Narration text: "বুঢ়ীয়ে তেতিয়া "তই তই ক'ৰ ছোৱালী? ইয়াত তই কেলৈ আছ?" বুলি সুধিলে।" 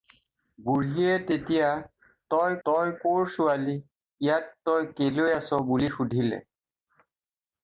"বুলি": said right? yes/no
yes